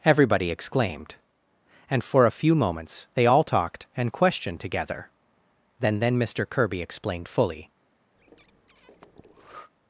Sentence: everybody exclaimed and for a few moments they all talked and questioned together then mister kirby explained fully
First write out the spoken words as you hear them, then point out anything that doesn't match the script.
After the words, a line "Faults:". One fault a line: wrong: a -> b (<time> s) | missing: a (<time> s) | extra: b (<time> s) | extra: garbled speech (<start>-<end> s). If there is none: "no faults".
everybody exclaimed and for a few moments they all talked and questioned together then then mister kirby explained fully
Faults:
extra: then (6.0 s)